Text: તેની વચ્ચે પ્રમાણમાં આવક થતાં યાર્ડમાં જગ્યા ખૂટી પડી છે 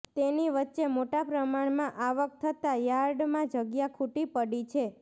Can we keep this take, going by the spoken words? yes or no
no